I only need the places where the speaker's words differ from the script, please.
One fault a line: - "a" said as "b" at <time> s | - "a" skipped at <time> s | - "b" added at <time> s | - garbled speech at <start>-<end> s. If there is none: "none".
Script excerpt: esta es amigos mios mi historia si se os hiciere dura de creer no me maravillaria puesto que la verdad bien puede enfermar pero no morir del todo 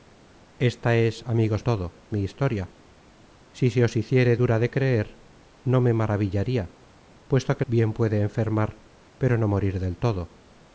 - "mios" said as "todo" at 1.6 s
- "la verdad" skipped at 7.6 s